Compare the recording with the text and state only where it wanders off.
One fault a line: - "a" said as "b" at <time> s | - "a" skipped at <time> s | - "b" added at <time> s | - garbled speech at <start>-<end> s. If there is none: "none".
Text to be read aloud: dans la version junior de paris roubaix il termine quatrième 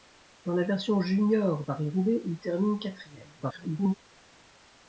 - "de" skipped at 1.6 s
- garbled speech at 3.4-3.9 s